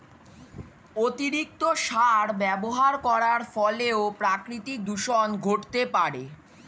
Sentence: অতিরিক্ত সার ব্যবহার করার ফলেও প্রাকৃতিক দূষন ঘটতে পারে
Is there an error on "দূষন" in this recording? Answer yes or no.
no